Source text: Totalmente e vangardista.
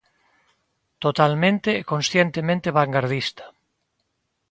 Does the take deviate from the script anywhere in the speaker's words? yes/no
yes